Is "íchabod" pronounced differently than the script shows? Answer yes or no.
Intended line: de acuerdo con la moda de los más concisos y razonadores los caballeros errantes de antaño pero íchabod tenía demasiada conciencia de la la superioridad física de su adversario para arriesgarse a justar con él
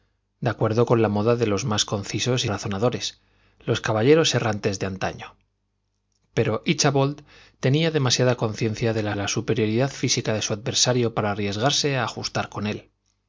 no